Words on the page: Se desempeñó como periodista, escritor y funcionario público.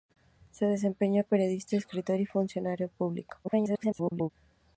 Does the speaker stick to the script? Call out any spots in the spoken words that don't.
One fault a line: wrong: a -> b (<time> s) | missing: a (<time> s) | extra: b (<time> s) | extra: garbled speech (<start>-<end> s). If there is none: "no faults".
missing: como (1.2 s)
extra: garbled speech (3.4-4.3 s)